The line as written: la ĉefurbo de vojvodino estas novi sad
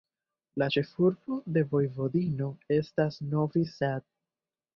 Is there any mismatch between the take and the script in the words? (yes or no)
no